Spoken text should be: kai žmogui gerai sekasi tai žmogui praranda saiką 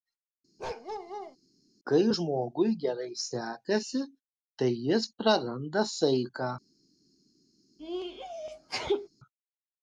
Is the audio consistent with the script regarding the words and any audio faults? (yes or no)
no